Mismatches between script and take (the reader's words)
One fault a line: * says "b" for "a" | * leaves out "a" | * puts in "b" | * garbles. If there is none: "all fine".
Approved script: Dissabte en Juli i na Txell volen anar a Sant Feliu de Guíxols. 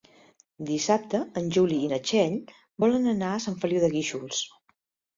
all fine